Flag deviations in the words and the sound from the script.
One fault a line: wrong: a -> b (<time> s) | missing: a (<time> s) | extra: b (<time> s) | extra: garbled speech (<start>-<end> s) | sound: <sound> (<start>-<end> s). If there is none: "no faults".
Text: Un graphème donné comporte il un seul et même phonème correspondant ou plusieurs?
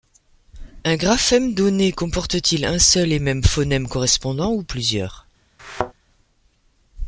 extra: t (2.4 s)
sound: thud (5.6-5.9 s)